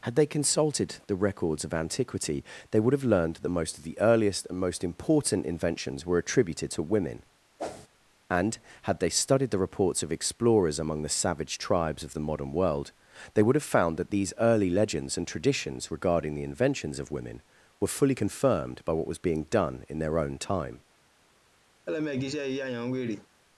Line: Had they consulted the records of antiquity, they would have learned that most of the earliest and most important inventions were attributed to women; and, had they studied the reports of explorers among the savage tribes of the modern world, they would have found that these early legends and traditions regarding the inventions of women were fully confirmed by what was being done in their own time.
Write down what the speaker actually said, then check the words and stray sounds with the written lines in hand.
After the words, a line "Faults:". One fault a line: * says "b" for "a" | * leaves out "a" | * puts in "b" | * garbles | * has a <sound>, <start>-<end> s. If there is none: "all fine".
Had they consulted the records of antiquity, they would have learned that most of the earliest and most important inventions were attributed to women; and, had they studied the reports of explorers among the savage tribes of the modern world, they would have found that these early legends and traditions regarding the inventions of women were fully confirmed by what was being done in their own time.
Faults:
* has a whoosh, 7.6-7.9 s
* has a laugh, 21.9-23.3 s